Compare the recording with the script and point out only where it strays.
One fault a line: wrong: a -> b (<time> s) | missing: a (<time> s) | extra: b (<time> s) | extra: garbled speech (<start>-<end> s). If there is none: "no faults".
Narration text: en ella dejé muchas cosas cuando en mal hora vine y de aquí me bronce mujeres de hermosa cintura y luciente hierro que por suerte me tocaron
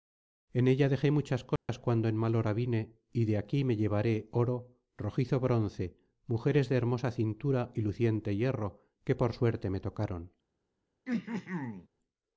extra: llevaré oro rojizo (3.8 s)